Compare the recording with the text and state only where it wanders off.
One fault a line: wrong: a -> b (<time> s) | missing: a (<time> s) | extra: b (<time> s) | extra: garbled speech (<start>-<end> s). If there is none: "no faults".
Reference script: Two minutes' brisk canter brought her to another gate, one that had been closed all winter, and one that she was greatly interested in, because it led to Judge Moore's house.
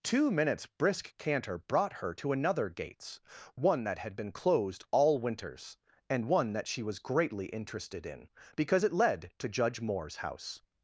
wrong: gate -> gates (2.7 s)
wrong: winter -> winters (5.2 s)